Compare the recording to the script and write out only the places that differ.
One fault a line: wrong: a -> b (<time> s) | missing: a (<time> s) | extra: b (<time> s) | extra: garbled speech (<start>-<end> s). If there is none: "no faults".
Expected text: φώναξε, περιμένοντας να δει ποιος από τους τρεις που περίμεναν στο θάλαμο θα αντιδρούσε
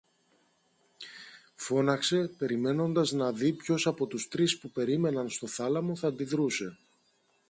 no faults